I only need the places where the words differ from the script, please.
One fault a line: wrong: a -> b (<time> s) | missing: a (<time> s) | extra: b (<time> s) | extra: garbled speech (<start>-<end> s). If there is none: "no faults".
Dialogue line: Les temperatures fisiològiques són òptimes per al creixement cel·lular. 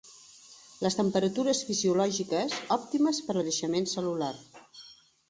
missing: són (2.6 s)
missing: al (3.4 s)